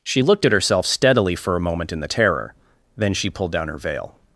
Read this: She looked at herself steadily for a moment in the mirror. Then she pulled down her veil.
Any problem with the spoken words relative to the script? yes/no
yes